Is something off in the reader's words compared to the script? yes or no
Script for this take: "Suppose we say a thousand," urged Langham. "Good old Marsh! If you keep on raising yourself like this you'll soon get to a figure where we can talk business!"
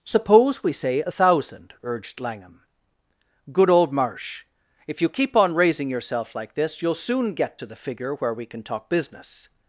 yes